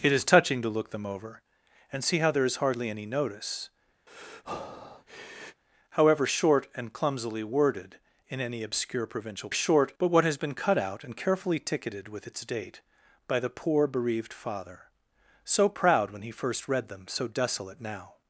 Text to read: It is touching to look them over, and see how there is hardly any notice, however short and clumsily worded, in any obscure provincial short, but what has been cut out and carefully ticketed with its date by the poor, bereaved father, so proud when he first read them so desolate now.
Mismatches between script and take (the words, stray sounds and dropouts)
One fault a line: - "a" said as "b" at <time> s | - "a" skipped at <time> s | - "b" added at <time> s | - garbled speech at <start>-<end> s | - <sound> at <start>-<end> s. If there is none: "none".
- breath at 4.1-5.6 s